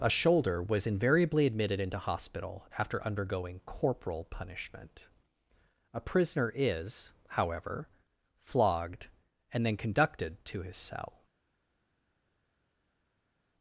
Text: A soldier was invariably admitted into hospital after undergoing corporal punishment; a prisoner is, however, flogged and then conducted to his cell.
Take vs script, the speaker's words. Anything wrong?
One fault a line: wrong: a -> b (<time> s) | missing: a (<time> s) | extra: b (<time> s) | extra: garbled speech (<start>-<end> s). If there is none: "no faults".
wrong: soldier -> shoulder (0.1 s)